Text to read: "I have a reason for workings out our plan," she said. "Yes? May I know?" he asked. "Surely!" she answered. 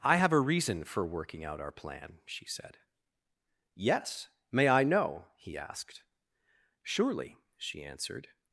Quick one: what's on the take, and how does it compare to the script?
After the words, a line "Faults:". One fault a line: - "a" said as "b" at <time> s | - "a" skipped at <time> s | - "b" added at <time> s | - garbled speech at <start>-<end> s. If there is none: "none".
"I have a reason for working out our plan," she said. "Yes? May I know?" he asked. "Surely!" she answered.
Faults:
- "workings" said as "working" at 1.0 s